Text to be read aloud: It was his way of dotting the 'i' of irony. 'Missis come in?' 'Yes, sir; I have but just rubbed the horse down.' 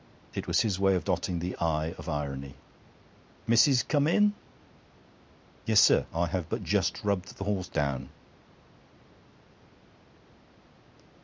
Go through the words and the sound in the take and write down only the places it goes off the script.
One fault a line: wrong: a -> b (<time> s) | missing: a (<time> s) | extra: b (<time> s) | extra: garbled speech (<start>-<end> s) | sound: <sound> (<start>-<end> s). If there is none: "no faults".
no faults